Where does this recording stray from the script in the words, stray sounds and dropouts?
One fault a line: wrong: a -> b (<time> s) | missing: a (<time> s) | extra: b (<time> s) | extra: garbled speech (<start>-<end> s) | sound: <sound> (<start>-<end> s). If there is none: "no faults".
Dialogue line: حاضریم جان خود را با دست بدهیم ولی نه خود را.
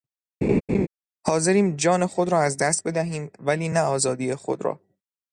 sound: laugh (0.4-0.9 s)
wrong: با -> از (2.4 s)
extra: آزادی (3.8 s)